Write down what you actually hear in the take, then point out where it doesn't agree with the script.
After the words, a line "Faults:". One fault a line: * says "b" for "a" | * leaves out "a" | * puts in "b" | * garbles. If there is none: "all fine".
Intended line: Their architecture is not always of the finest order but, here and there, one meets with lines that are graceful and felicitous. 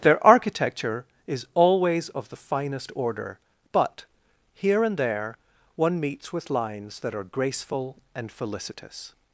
Their architecture is always of the finest order but, here and there, one meets with lines that are graceful and felicitous.
Faults:
* leaves out "not"